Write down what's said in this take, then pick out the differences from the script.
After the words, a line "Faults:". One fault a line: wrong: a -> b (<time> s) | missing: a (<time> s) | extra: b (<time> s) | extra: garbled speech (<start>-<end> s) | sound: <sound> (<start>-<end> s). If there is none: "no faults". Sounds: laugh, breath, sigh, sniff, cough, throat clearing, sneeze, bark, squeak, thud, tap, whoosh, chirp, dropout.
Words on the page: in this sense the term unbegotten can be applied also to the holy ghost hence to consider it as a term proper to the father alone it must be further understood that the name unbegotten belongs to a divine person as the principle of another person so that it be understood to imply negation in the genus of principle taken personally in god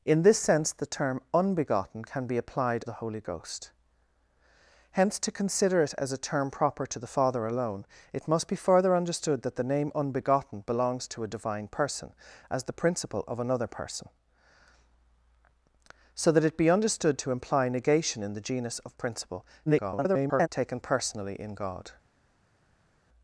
in this sense the term unbegotten can be applied the holy ghost hence to consider it as a term proper to the father alone it must be further understood that the name unbegotten belongs to a divine person as the principle of another person so that it be understood to imply negation in the genus of principle [garbled] taken personally in god
Faults:
missing: also to (2.8 s)
extra: garbled speech (19.7-20.5 s)